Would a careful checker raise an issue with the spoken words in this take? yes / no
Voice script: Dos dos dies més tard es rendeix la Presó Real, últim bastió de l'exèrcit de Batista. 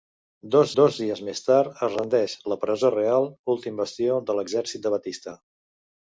no